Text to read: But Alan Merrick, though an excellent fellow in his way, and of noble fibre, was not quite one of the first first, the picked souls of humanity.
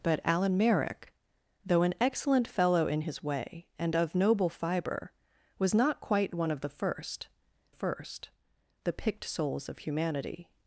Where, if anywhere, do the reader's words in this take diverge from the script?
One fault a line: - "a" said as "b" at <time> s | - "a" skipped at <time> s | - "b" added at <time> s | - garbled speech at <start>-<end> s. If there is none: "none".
none